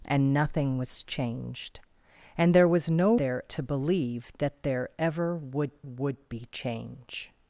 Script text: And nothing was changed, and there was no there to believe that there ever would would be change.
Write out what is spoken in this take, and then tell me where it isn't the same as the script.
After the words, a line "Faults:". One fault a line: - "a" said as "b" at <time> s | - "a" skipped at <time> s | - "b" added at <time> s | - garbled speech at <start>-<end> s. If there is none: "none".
And nothing was changed, and there was no there to believe that there ever would would be change.
Faults:
none